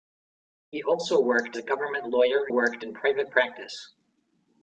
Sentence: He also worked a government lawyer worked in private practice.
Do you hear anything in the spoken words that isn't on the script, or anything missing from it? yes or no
no